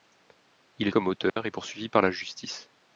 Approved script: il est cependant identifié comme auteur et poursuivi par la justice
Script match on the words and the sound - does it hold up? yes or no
no